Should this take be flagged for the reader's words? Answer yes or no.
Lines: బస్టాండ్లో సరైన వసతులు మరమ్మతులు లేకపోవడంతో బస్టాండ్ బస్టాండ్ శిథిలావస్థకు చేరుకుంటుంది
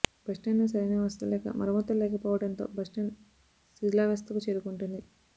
yes